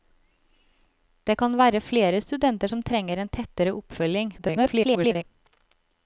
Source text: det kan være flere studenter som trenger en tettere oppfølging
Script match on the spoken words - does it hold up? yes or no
no